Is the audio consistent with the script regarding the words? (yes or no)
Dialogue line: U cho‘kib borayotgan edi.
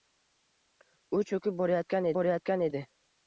no